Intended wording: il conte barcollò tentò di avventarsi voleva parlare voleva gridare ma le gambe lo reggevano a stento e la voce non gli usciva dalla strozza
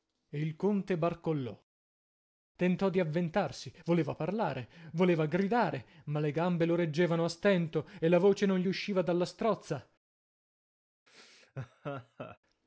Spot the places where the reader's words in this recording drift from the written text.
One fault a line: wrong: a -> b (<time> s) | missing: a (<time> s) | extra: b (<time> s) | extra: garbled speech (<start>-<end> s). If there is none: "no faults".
no faults